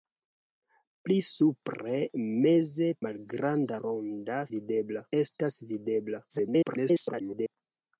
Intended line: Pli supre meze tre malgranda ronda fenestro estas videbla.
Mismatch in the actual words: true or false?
true